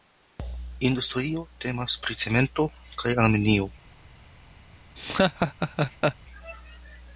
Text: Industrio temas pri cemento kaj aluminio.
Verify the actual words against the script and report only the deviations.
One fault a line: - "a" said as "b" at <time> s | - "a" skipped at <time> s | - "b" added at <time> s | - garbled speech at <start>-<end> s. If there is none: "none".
none